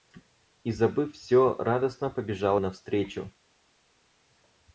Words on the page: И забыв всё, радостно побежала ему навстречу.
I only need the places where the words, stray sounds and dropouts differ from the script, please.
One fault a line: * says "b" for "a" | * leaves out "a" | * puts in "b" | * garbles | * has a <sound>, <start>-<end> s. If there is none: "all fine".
* leaves out "ему"